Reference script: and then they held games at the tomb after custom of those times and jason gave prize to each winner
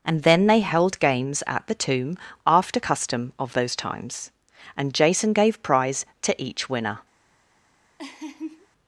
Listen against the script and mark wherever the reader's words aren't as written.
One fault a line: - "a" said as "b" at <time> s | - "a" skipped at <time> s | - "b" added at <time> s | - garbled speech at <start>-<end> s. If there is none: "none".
none